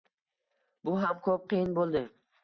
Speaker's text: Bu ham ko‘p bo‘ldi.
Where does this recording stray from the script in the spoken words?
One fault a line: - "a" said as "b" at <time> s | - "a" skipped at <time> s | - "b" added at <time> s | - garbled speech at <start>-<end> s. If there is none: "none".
- "qiyin" added at 1.5 s